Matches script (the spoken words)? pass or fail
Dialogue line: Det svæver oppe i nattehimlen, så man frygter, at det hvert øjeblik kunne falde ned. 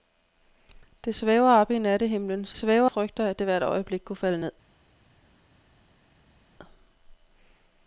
fail